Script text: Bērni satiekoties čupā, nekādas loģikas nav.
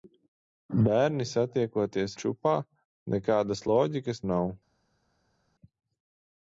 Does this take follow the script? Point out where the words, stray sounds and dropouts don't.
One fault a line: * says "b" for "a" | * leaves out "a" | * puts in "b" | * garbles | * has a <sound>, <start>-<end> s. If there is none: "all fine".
all fine